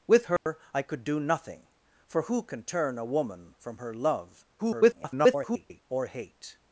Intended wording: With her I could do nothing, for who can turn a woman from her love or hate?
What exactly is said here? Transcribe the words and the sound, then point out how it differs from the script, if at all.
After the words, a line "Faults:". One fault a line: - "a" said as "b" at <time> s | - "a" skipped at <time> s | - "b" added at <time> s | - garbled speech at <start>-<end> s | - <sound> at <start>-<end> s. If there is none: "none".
With her I could do nothing, for who can turn a woman from her love [garbled] or hate?
Faults:
- dropout at 0.4-0.5 s
- garbled speech at 4.6-5.8 s